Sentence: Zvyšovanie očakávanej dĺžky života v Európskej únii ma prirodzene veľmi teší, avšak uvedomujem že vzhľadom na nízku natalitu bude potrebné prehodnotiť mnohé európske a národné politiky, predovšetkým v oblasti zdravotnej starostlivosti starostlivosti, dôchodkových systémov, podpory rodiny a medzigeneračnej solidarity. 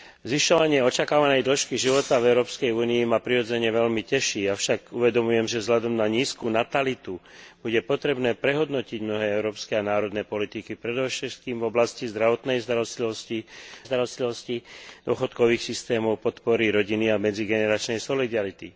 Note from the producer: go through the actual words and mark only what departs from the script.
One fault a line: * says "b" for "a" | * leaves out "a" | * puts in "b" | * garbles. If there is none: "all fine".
all fine